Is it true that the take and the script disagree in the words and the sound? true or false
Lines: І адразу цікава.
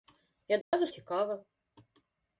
true